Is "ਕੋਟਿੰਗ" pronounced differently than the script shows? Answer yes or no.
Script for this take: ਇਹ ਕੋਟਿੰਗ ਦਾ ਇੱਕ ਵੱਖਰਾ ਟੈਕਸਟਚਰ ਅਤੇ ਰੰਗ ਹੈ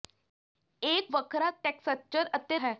yes